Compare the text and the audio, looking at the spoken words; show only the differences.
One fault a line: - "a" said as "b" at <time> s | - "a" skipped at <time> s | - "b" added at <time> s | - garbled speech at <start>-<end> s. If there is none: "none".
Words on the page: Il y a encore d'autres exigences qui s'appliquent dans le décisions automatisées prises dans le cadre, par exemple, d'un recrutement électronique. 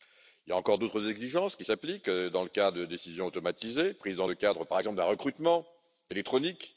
- "cas de" added at 2.5 s